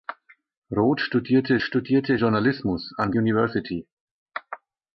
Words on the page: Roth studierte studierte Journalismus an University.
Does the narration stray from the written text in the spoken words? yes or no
no